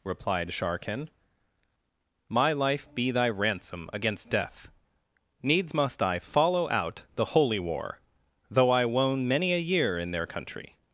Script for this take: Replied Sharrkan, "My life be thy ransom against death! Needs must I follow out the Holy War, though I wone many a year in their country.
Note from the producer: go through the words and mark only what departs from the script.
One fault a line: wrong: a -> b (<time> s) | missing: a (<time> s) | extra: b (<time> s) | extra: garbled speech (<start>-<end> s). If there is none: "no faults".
no faults